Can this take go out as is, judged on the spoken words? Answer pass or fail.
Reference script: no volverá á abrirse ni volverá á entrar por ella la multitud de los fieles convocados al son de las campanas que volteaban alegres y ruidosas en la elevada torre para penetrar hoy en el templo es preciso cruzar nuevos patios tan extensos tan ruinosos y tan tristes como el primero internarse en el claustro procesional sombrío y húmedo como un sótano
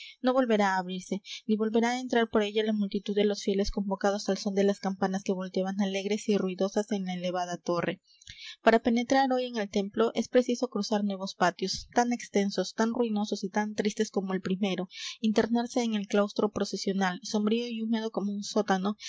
pass